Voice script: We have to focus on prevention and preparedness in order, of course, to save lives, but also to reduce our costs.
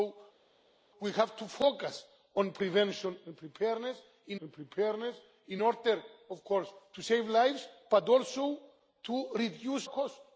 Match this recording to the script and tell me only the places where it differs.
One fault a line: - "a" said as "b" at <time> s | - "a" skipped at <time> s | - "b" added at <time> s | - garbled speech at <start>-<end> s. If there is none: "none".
- "and preparedness in" added at 4.4 s
- "our" skipped at 9.9 s